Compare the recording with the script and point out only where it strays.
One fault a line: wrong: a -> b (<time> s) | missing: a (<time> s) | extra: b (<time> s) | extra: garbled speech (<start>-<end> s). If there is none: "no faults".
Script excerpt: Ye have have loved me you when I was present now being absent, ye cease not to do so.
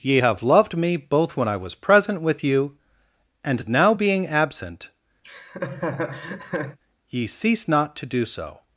missing: have (0.4 s)
wrong: you -> both (1.0 s)
extra: with you and (2.2 s)